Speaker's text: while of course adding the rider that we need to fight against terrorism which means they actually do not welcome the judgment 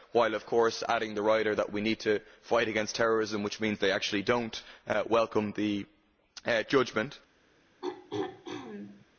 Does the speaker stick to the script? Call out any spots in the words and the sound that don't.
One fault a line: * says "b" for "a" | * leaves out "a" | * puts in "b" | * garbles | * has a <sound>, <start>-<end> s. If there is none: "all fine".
* has a throat clearing, 7.8-9.1 s